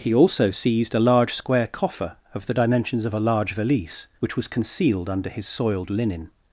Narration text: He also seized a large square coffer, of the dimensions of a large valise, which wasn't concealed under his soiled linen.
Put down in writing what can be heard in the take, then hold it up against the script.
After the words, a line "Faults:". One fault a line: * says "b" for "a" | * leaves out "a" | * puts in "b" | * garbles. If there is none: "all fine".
He also seized a large square coffer, of the dimensions of a large valise, which was concealed under his soiled linen.
Faults:
* says "was" for "wasn't"